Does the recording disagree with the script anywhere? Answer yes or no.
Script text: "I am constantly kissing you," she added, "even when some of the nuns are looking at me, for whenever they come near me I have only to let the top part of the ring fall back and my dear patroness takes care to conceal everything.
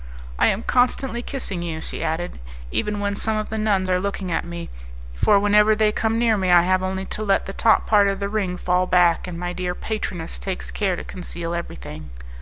no